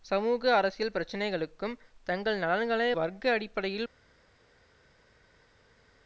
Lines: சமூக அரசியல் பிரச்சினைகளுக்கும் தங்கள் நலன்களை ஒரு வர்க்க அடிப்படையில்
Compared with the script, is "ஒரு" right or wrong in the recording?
wrong